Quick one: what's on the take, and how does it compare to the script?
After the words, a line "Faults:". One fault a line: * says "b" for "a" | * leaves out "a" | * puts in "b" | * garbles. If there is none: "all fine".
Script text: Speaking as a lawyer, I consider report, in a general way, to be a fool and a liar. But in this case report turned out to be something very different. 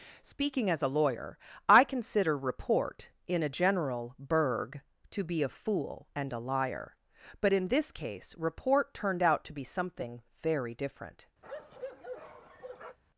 Speaking as a lawyer, I consider report, in a general berg, to be a fool and a liar. But in this case report turned out to be something very different.
Faults:
* says "berg" for "way"